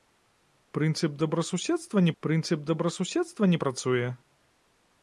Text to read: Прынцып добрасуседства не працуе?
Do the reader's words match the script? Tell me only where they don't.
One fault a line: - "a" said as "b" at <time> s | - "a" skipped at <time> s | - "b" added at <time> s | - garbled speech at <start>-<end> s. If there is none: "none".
- "прынцып добрасуседства не" added at 2.2 s